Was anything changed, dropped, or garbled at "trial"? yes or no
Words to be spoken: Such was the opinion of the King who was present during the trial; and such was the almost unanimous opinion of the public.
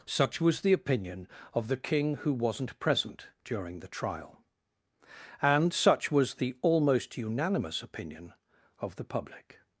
no